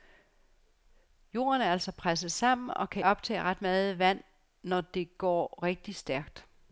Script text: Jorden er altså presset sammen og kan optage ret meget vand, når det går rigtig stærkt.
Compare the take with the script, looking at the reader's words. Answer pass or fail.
pass